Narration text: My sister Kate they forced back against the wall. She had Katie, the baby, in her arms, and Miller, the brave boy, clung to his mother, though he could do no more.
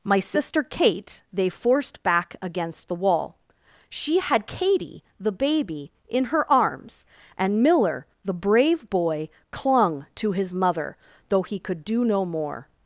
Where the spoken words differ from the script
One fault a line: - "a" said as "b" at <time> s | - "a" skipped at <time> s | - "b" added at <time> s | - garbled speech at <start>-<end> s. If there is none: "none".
none